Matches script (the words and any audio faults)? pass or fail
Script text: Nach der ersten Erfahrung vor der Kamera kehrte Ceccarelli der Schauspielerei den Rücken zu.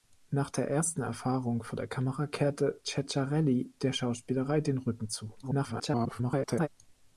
fail